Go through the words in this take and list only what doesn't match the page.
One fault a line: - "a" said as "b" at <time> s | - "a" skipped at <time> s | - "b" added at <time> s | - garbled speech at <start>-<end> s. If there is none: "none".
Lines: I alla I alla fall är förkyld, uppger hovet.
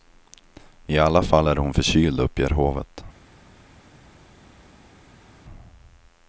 - "I alla" skipped at 1.2 s
- "hon" added at 1.6 s